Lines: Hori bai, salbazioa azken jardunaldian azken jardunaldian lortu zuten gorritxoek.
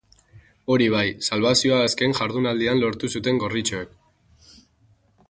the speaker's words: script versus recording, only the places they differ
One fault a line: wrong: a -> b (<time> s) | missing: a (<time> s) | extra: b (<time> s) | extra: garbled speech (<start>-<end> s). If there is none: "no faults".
missing: azken jardunaldian (2.8 s)